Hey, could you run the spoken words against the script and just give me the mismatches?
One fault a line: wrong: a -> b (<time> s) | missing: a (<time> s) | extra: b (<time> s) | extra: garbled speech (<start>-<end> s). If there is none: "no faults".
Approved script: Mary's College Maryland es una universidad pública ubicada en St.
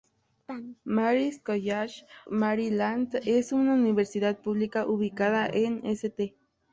no faults